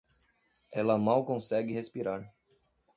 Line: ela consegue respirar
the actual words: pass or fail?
fail